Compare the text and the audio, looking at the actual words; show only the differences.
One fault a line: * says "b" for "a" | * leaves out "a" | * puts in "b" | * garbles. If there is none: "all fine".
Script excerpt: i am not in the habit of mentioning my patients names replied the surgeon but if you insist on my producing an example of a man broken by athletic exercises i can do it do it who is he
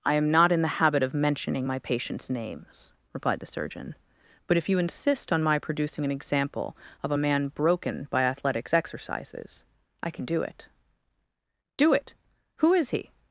* says "athletics" for "athletic"